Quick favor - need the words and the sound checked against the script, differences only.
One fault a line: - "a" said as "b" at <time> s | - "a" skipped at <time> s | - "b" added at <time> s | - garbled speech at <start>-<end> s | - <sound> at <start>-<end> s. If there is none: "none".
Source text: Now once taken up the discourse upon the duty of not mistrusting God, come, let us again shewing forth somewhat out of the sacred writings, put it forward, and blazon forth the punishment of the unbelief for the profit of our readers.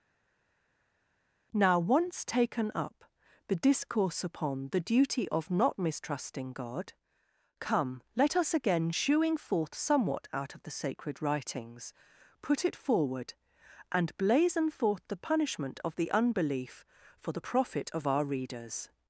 none